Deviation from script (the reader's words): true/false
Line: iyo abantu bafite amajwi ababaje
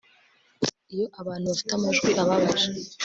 false